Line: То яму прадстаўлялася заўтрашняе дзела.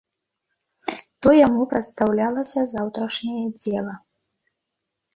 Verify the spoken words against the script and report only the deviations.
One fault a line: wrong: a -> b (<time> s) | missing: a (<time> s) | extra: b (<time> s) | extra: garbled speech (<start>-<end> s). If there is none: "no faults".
no faults